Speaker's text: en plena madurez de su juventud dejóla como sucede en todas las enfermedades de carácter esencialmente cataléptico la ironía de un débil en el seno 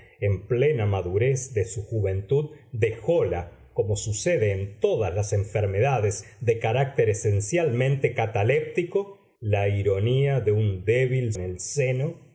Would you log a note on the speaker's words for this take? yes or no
no